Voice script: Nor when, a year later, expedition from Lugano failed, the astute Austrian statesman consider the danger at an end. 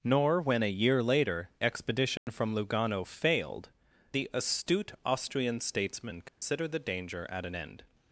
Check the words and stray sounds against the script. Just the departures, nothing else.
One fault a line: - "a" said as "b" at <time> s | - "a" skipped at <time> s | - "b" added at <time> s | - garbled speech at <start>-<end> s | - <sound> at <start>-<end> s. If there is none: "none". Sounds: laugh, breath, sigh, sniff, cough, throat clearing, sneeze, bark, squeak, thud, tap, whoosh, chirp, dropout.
- dropout at 2.2-2.3 s
- dropout at 6.3-6.4 s